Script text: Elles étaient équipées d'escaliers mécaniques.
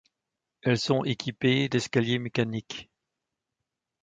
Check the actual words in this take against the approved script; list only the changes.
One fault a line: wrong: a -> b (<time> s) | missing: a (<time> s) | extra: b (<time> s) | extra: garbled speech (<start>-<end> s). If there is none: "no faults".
wrong: étaient -> sont (0.8 s)